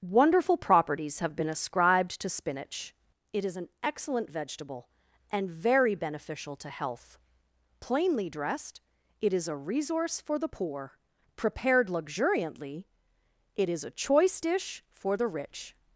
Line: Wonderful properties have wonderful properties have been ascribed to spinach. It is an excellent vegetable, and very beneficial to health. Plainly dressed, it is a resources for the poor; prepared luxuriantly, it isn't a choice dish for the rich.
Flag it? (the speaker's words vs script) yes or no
yes